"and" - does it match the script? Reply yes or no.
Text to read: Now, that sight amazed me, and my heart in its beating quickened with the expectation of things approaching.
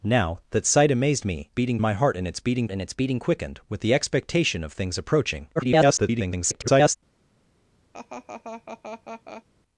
no